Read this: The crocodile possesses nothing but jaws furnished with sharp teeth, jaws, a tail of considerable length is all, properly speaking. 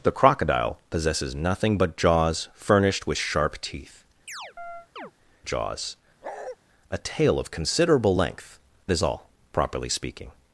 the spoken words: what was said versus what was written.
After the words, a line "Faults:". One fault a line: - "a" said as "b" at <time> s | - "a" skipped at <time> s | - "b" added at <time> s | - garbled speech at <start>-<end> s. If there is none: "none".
The crocodile possesses nothing but jaws furnished with sharp teeth, jaws, a tail of considerable length is all, properly speaking.
Faults:
none